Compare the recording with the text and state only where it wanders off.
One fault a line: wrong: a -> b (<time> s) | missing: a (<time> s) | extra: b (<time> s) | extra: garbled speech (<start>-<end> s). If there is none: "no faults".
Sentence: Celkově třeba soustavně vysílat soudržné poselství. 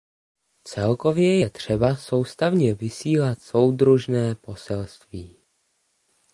extra: je (1.4 s)